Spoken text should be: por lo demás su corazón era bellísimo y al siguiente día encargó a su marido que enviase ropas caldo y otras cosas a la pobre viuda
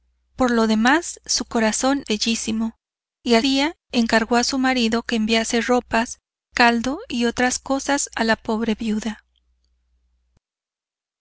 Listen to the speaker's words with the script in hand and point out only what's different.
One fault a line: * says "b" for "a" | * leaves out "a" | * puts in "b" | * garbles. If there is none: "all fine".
* leaves out "era"
* leaves out "siguiente"